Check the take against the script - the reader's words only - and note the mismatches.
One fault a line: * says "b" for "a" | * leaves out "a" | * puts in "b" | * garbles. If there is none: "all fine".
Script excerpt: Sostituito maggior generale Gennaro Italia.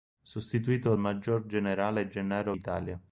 all fine